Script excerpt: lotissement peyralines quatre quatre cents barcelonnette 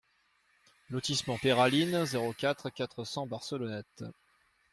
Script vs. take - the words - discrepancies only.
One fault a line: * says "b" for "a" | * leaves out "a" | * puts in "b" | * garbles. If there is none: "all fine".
* puts in "zéro"